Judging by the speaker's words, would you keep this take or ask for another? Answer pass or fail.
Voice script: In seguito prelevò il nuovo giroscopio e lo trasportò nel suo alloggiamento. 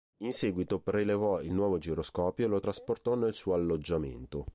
pass